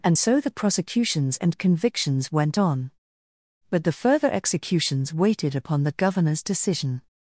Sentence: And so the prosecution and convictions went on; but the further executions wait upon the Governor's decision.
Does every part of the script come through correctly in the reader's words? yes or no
no